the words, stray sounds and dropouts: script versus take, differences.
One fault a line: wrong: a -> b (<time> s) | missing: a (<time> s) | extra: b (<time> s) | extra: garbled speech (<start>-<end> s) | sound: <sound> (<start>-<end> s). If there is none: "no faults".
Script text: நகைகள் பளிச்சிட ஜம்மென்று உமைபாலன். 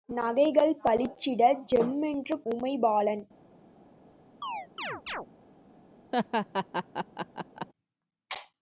sound: chirp (4.4-5.3 s)
sound: laugh (6.1-7.7 s)